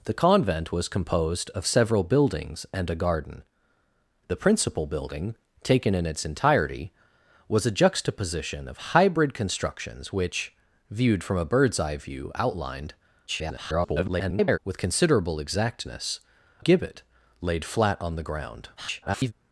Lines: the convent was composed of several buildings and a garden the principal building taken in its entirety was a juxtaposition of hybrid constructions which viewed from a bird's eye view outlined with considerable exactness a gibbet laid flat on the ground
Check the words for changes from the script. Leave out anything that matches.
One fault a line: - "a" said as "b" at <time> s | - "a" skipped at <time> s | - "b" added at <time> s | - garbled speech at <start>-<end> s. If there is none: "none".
- garbled speech at 13.3-14.6 s
- "a" skipped at 16.2 s
- garbled speech at 18.8-19.3 s